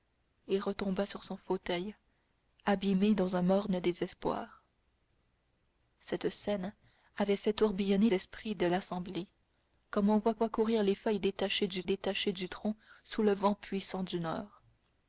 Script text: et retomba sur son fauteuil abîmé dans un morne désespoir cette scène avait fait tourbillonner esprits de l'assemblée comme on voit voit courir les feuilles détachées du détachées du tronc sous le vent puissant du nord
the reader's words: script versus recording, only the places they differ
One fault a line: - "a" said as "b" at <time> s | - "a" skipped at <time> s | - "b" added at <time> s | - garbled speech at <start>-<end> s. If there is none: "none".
none